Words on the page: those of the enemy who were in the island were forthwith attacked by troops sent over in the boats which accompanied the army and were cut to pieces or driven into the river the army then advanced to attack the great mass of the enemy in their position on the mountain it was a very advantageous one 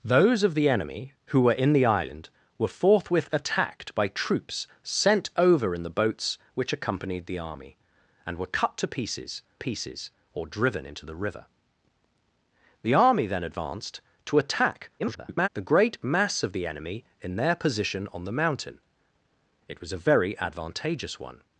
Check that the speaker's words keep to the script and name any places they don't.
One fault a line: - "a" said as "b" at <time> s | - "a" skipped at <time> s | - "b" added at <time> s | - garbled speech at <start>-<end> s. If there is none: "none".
- "pieces" added at 9.6 s
- garbled speech at 15.0-15.5 s